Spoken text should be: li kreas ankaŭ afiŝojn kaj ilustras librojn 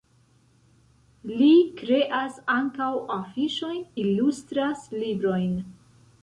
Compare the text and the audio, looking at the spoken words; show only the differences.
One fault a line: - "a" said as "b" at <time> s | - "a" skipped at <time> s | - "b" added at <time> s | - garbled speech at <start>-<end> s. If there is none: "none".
- "kaj" skipped at 3.8 s